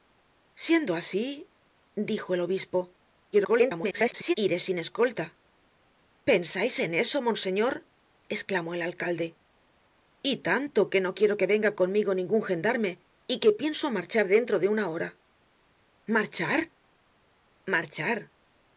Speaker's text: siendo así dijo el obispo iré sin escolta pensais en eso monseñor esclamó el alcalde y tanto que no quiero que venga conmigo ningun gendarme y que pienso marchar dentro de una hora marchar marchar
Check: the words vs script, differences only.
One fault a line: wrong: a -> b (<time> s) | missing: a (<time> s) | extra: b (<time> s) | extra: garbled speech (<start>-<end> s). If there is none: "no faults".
extra: garbled speech (3.3-4.3 s)